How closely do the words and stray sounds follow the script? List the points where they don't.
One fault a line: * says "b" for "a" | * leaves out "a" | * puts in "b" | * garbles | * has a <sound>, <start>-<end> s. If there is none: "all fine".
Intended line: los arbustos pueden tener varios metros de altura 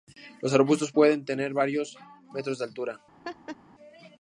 * has a laugh, 3.2-3.6 s